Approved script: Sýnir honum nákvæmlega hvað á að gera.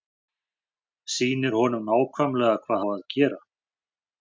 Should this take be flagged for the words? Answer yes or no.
no